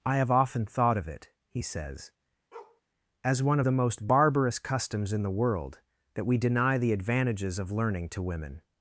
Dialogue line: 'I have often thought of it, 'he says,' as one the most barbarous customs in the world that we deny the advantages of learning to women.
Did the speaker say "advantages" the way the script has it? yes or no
yes